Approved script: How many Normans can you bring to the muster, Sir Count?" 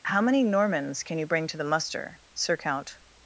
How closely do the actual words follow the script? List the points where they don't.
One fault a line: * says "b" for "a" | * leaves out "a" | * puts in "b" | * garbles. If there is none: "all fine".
all fine